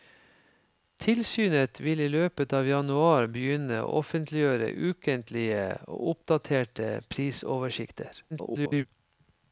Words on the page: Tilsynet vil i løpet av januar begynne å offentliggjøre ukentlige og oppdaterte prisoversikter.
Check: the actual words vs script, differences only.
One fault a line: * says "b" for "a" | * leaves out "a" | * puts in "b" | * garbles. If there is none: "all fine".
* garbles